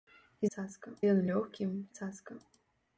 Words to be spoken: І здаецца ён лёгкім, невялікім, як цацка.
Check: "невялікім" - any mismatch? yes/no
yes